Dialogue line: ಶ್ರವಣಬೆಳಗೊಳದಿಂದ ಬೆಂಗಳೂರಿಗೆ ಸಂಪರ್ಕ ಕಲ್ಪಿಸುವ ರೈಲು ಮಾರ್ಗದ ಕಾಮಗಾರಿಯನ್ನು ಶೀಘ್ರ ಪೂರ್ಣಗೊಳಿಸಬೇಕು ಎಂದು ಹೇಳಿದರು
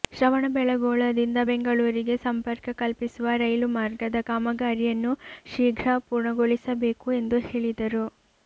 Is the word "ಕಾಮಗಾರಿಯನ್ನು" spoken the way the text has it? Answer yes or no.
yes